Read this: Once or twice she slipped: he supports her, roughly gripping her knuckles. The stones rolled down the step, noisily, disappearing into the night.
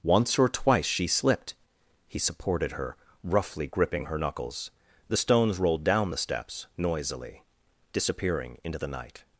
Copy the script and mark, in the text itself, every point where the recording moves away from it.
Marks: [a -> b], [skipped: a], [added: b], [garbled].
Once or twice she slipped: he [supports -> supported] her, roughly gripping her knuckles. The stones rolled down the [step, -> steps] noisily, disappearing into the night.